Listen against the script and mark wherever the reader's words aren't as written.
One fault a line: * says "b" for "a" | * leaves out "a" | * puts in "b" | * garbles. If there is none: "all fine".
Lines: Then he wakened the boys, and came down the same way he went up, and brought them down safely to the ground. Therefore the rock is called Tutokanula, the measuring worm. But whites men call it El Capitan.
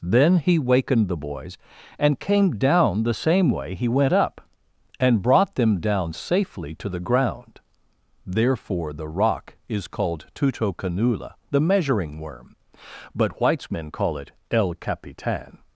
all fine